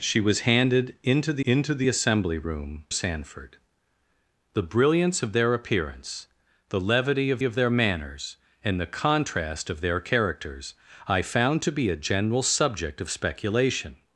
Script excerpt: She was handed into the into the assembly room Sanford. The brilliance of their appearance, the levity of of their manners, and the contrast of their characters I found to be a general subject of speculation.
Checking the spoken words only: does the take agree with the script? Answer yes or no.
yes